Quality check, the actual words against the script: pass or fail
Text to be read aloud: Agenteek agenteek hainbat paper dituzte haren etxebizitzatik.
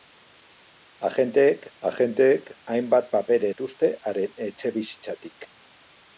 pass